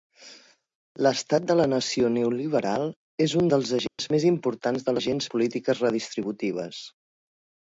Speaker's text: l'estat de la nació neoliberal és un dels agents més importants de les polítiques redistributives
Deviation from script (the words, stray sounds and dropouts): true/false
true